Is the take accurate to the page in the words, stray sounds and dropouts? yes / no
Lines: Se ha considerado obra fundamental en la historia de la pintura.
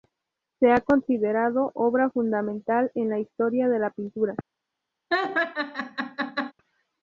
no